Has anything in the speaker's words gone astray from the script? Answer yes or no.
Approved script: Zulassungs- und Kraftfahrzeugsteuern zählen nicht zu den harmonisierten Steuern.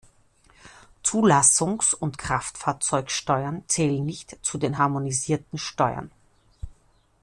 no